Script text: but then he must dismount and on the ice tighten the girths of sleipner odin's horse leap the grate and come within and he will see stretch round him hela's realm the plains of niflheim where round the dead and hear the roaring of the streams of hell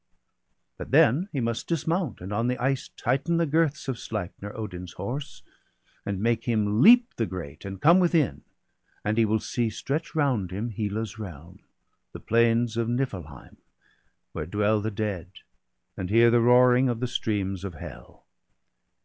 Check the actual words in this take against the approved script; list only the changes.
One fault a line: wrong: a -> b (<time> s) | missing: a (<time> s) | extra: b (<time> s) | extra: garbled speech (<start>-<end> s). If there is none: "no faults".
extra: and make him (6.1 s)
wrong: round -> dwell (14.5 s)